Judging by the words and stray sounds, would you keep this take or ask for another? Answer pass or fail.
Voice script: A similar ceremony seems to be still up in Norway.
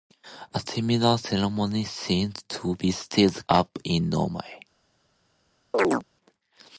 fail